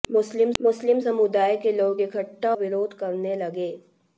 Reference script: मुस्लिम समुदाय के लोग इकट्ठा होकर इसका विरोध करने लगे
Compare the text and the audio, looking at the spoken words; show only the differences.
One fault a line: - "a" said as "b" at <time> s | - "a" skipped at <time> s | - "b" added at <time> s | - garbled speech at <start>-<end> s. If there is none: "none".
- "मुस्लिम" added at 0.6 s
- "होकर इसका" skipped at 2.5 s